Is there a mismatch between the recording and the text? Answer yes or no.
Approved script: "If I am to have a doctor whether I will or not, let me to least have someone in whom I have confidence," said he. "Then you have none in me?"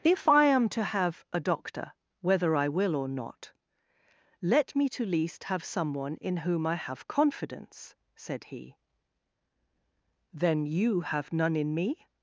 no